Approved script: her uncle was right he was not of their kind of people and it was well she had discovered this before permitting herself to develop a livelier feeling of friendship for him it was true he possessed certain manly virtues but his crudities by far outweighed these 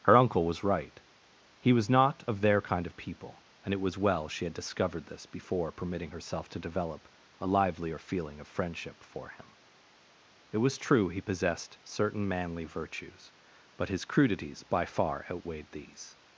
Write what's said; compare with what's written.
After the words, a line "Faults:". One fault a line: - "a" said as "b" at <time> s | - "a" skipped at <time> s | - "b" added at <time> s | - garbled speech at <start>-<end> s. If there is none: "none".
her uncle was right he was not of their kind of people and it was well she had discovered this before permitting herself to develop a livelier feeling of friendship for him it was true he possessed certain manly virtues but his crudities by far outweighed these
Faults:
none